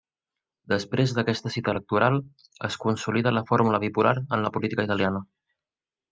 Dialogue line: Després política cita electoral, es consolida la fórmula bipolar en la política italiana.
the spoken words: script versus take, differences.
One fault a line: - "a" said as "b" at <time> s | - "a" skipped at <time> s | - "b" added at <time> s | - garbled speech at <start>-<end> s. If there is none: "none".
- "política" said as "d'aquesta" at 1.2 s